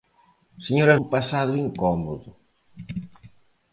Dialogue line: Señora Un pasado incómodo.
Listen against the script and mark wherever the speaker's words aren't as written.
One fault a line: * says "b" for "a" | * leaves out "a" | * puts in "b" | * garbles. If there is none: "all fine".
all fine